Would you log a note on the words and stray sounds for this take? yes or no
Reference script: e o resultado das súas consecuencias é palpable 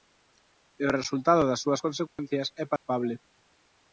yes